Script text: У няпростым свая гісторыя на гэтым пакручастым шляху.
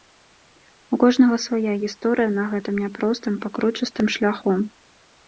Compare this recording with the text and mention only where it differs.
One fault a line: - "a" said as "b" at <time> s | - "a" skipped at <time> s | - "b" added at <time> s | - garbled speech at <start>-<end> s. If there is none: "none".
- "няпростым" said as "кожнага" at 1.0 s
- "няпростым" added at 2.8 s